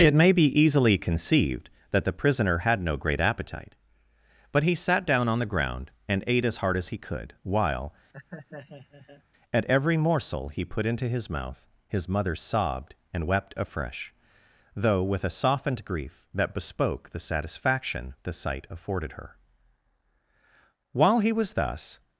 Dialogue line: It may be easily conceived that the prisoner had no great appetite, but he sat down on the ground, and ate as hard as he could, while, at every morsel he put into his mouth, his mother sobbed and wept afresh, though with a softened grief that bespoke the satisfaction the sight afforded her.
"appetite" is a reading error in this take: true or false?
false